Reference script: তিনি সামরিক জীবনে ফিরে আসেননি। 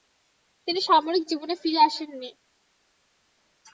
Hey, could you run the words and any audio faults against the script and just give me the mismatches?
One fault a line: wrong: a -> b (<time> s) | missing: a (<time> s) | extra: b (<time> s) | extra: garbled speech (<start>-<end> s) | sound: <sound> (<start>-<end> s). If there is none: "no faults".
no faults